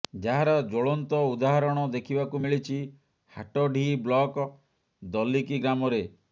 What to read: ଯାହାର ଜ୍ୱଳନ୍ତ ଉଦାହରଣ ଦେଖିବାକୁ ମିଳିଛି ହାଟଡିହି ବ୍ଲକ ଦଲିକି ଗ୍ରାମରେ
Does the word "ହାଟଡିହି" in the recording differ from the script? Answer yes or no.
no